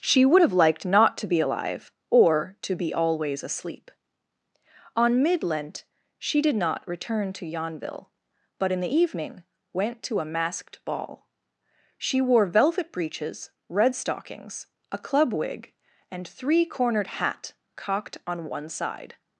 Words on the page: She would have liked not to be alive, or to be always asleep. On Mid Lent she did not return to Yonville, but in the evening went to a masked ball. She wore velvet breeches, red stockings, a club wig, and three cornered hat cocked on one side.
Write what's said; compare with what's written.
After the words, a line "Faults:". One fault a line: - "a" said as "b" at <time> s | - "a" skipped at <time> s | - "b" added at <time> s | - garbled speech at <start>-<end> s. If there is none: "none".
She would have liked not to be alive, or to be always asleep. On Mid Lent she did not return to Yonville, but in the evening went to a masked ball. She wore velvet breeches, red stockings, a club wig, and three cornered hat cocked on one side.
Faults:
none